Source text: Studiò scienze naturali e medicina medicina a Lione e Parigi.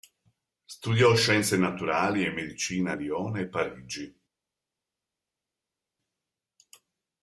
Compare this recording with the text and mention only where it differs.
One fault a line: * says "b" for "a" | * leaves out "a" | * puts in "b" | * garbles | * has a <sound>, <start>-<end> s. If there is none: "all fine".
* leaves out "medicina"